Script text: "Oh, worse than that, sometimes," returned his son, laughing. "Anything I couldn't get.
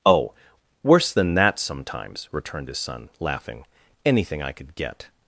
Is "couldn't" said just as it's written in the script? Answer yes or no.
no